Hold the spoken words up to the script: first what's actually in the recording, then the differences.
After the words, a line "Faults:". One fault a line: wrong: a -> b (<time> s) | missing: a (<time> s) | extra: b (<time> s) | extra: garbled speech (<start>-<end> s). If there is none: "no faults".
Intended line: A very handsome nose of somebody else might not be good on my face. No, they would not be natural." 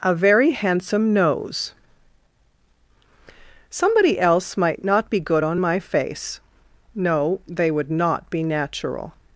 A very handsome nose somebody else might not be good on my face. No, they would not be natural."
Faults:
missing: of (1.8 s)